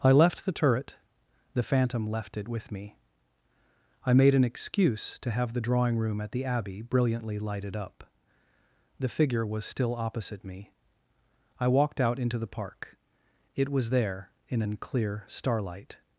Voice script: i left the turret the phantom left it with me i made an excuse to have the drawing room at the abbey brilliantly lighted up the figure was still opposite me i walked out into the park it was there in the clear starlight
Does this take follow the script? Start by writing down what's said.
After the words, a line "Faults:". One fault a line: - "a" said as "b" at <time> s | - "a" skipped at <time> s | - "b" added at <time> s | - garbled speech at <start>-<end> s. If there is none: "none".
i left the turret the phantom left it with me i made an excuse to have the drawing room at the abbey brilliantly lighted up the figure was still opposite me i walked out into the park it was there in an clear starlight
Faults:
- "the" said as "an" at 14.6 s